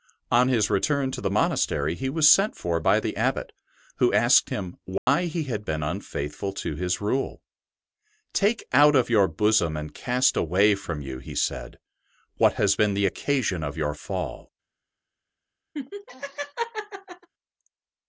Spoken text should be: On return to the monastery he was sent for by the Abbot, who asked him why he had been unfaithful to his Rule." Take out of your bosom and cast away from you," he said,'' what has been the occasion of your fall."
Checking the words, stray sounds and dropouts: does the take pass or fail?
fail